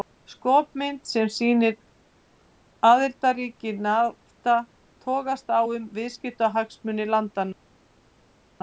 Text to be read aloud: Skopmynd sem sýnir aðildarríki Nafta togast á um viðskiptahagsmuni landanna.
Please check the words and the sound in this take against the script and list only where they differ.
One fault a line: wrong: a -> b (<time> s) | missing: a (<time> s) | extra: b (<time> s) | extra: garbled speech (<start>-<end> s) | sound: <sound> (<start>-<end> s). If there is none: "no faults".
no faults